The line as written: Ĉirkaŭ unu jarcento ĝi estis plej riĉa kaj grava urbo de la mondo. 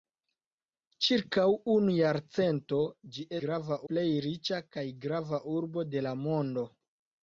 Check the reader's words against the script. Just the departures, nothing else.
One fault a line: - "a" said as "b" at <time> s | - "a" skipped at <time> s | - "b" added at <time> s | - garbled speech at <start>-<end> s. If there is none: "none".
- "estis" said as "grava" at 3.5 s